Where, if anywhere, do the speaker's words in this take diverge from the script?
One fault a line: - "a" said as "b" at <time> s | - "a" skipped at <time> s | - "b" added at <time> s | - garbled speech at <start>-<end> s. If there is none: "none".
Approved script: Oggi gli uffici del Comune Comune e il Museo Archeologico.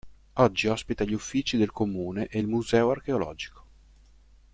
- "ospita" added at 0.7 s
- "Comune" skipped at 2.2 s